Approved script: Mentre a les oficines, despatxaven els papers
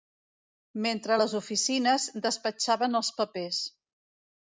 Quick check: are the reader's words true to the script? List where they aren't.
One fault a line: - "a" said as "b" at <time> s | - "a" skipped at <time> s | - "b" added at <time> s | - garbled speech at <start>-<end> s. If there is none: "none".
none